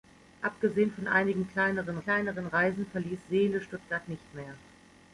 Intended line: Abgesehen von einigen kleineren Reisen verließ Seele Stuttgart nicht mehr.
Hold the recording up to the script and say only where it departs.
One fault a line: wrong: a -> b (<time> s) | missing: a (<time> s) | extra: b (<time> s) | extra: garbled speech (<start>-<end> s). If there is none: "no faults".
extra: kleineren (2.0 s)